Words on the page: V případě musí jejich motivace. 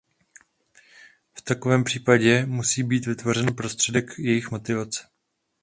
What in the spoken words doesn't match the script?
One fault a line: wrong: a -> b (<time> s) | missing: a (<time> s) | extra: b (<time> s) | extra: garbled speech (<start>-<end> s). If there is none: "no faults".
extra: takovém (1.4 s)
extra: být vytvořen prostředek (2.8 s)